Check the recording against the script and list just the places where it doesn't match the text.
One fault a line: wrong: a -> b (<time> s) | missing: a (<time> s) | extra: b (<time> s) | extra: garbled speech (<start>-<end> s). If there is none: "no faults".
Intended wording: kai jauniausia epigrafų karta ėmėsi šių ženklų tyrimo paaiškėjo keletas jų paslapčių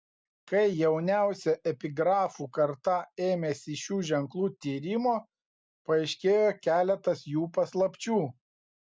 no faults